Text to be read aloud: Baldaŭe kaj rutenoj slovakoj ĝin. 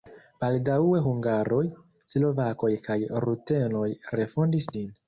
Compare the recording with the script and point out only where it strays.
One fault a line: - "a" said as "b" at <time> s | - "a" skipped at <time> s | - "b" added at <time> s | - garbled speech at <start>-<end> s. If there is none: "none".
- "hungaroj slovakoj" added at 1.1 s
- "slovakoj" said as "refondis" at 4.2 s